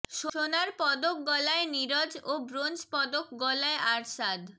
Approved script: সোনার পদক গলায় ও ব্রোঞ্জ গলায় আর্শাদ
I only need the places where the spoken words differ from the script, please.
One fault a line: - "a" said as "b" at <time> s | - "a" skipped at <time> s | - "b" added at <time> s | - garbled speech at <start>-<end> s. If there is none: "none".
- "নীরজ" added at 1.7 s
- "পদক" added at 2.9 s